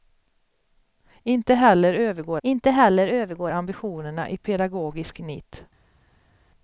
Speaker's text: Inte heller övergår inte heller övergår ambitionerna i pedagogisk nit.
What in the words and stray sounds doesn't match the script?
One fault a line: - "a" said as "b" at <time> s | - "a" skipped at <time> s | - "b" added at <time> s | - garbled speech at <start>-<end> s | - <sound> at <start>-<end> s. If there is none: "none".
none